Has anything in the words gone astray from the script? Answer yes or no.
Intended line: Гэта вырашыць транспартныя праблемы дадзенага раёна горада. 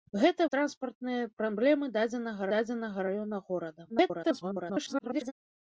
yes